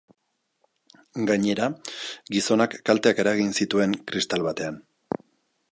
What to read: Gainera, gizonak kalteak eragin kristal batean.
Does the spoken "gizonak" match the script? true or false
true